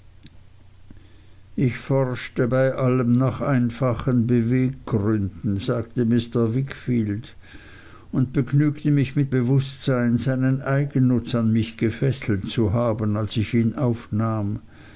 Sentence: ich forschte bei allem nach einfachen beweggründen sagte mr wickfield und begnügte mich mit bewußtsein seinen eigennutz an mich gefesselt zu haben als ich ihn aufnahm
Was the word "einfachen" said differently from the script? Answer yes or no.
no